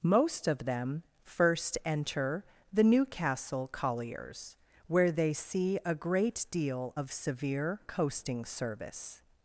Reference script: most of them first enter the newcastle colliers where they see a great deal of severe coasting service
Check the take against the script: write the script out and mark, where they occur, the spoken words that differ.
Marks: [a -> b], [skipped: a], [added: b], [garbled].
most of them first enter the newcastle colliers where they see a great deal of severe coasting service